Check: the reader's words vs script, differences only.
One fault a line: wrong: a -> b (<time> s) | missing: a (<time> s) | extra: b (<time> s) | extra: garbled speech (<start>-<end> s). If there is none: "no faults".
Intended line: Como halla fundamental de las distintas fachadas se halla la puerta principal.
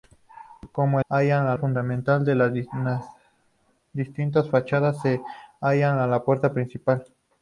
no faults